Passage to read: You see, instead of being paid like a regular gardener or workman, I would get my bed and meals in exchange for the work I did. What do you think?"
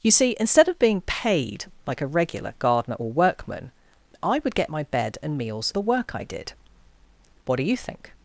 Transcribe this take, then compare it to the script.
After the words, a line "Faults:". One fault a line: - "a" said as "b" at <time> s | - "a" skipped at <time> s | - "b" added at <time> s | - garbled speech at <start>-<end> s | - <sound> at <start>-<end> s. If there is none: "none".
You see, instead of being paid like a regular gardener or workman, I would get my bed and meals the work I did. What do you think?"
Faults:
- "in exchange for" skipped at 5.7 s